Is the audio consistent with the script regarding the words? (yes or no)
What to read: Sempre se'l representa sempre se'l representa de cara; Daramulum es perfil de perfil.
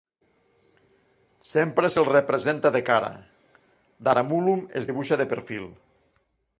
no